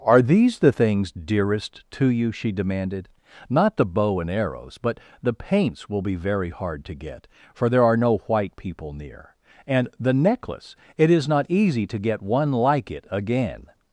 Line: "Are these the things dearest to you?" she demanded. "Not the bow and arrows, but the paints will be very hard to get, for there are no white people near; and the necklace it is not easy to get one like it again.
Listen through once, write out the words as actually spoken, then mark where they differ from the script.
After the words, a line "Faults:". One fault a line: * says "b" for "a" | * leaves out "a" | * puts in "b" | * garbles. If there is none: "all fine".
"Are these the things dearest to you?" she demanded. "Not the bow and arrows, but the paints will be very hard to get, for there are no white people near; and the necklace it is not easy to get one like it again.
Faults:
all fine